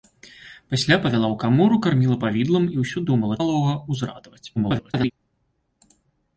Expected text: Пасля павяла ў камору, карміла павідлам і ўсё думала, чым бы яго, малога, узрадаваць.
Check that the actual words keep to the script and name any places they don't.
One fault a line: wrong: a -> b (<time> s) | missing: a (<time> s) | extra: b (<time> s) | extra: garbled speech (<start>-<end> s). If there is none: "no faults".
missing: чым бы яго (3.4 s)
extra: garbled speech (4.6-5.1 s)